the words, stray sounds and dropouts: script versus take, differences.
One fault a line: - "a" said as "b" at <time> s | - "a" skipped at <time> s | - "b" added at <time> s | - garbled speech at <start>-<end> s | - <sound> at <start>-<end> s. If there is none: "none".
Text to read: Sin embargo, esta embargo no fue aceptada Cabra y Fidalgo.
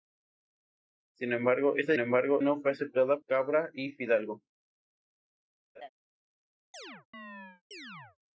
- laugh at 5.7-5.9 s
- chirp at 6.7-8.2 s